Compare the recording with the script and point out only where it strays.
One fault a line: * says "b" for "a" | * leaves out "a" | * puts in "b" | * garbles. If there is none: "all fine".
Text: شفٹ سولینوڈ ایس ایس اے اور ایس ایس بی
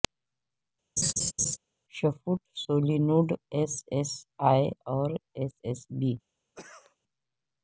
all fine